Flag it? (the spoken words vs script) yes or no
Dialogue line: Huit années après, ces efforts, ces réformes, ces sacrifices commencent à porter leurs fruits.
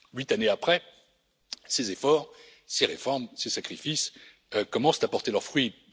no